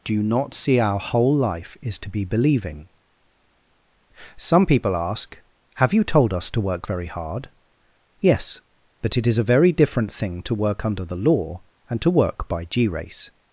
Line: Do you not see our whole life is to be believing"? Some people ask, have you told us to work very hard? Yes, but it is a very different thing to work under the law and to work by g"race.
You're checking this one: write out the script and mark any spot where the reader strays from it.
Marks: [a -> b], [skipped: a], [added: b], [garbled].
Do you not see our whole life is to be believing"? Some people ask, have you told us to work very hard? Yes, but it is a very different thing to work under the law and to work by g"race.